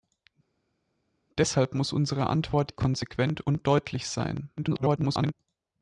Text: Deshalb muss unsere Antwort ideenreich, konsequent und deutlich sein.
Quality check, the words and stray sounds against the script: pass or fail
fail